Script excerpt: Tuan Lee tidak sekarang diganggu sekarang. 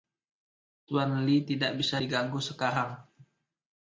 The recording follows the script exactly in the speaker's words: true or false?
false